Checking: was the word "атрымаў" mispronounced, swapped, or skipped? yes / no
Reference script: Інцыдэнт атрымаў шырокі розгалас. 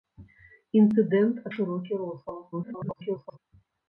yes